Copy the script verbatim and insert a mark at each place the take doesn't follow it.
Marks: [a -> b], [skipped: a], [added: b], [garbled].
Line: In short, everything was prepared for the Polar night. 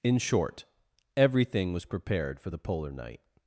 In short, everything was prepared for the Polar night.